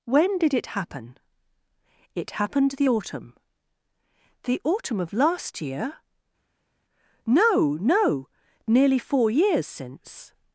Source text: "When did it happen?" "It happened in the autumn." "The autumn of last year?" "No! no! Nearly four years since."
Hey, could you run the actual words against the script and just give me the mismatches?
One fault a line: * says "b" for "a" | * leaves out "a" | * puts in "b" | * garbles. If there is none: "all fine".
* leaves out "in"